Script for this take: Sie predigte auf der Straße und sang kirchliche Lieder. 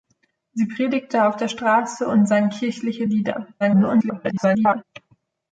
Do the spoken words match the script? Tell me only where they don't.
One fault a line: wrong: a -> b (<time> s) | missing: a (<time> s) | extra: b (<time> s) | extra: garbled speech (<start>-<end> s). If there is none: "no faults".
extra: garbled speech (3.6-4.8 s)